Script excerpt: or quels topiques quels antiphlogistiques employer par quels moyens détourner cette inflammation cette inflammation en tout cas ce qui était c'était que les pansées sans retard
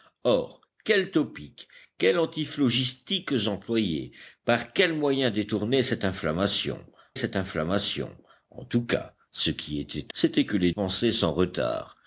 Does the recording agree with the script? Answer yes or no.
yes